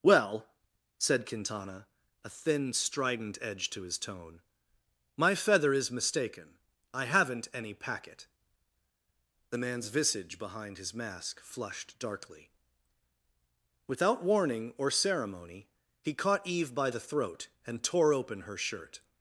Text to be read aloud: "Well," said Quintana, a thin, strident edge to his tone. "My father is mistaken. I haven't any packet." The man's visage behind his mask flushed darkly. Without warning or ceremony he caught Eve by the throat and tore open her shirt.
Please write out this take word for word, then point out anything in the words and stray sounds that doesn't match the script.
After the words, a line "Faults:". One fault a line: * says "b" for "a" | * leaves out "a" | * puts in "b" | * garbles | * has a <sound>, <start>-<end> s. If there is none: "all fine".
"Well," said Quintana, a thin, strident edge to his tone. "My feather is mistaken. I haven't any packet." The man's visage behind his mask flushed darkly. Without warning or ceremony he caught Eve by the throat and tore open her shirt.
Faults:
* says "feather" for "father"